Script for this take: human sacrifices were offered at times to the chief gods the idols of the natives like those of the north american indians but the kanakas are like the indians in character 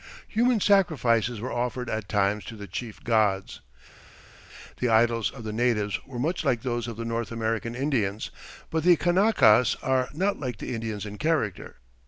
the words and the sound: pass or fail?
fail